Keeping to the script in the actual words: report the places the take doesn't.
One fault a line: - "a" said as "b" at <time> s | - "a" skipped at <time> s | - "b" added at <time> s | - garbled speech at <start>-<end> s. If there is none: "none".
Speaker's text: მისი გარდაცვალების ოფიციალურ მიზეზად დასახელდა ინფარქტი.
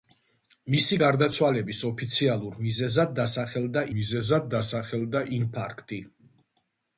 - "მიზეზად დასახელდა" added at 4.0 s